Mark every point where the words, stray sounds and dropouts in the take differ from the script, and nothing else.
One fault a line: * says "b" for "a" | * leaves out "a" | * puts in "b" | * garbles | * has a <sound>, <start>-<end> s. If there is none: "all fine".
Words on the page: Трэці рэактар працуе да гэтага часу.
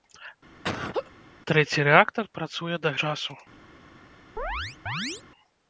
* has a laugh, 0.6-1.1 s
* leaves out "гэтага"
* has a chirp, 4.4-5.2 s